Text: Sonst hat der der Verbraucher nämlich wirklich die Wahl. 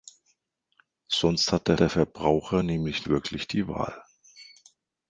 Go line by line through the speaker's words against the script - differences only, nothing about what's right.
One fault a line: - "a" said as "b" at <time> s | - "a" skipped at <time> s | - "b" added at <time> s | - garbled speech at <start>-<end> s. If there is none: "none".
none